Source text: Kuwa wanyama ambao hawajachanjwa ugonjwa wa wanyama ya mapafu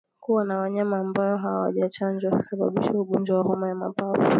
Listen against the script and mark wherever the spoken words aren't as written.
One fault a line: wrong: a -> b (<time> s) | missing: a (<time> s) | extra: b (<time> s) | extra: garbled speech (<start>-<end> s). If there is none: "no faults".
extra: na (0.5 s)
extra: husababisha (2.4 s)
wrong: wanyama -> homa (3.4 s)